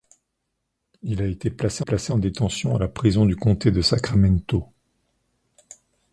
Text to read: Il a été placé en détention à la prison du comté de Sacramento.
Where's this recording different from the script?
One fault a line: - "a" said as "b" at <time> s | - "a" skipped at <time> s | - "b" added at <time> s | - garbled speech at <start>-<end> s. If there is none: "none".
- "placé" added at 1.8 s